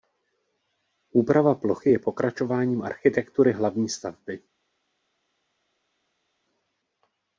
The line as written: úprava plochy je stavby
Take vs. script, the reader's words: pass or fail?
fail